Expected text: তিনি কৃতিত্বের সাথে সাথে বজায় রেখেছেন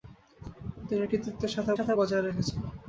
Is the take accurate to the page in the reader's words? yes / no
yes